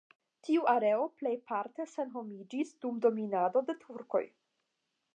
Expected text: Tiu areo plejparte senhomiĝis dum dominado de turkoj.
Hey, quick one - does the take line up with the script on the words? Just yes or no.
yes